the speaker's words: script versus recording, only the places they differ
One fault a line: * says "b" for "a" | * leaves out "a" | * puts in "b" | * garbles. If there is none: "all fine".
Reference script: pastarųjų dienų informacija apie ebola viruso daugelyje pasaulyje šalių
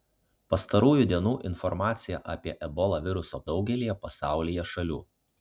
all fine